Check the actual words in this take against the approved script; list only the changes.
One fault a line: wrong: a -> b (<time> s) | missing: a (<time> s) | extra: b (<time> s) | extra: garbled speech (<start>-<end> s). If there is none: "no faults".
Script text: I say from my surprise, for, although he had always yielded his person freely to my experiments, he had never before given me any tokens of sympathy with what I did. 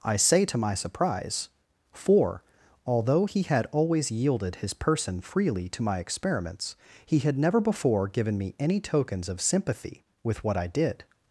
wrong: from -> to (0.5 s)